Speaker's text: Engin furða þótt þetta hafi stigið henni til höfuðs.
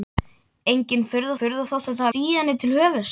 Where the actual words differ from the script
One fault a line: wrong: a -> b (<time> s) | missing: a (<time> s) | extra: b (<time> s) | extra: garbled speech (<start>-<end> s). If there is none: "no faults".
extra: furða (1.4 s)
missing: hafi (2.1 s)